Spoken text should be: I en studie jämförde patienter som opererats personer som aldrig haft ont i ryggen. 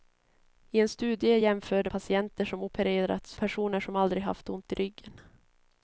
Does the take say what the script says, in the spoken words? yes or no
yes